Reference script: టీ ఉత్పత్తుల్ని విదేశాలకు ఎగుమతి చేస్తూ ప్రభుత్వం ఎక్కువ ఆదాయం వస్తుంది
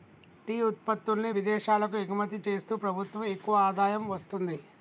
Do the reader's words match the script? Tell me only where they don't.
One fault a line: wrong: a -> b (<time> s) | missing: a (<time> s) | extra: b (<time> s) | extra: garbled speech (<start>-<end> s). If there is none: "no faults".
no faults